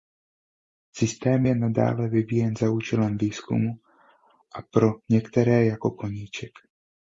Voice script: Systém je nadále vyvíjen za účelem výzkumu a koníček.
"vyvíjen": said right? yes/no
yes